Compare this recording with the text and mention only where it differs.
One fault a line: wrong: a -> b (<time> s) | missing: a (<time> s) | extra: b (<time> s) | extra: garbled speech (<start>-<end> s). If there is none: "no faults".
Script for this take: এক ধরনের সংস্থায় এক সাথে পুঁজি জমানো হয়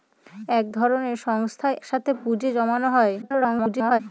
missing: এক (1.8 s)
extra: garbled speech (3.2-4.0 s)